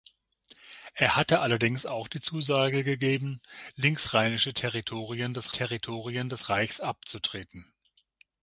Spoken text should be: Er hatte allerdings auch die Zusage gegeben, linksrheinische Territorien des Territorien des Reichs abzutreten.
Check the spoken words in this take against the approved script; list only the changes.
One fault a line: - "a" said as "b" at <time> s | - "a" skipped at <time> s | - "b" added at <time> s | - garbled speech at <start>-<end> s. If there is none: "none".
none